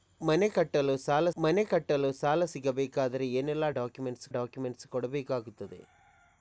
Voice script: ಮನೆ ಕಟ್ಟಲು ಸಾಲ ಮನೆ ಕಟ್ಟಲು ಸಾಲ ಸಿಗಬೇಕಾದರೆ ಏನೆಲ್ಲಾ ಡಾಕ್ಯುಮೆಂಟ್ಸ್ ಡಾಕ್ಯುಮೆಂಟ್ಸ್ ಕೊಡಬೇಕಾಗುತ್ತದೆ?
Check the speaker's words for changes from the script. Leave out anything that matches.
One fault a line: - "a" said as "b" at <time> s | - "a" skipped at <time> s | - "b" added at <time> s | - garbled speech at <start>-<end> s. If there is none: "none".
none